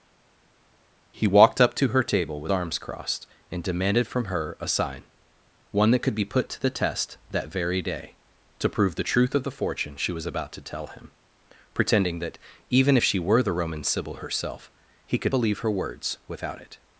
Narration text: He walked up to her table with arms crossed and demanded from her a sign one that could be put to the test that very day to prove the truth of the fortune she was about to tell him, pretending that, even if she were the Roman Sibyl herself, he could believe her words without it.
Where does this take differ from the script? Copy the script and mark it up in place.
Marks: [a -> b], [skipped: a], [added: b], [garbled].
He walked up to her table with arms crossed and demanded from her a sign one that could be put to the test that very day to prove the truth of the fortune she was about to tell him, pretending that, even if she were the Roman Sibyl herself, he could believe her words without it.